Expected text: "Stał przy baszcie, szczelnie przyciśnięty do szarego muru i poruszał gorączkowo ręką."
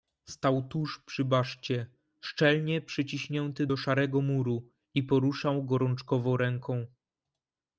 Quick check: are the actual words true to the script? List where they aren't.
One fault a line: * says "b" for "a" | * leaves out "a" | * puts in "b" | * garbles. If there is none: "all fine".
* puts in "tuż"